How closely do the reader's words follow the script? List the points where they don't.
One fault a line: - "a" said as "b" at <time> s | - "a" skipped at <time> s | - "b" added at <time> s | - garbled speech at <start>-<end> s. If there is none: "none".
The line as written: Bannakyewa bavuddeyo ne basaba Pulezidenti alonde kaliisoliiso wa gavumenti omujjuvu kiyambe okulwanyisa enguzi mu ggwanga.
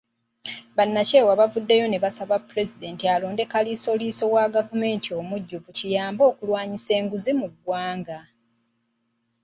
none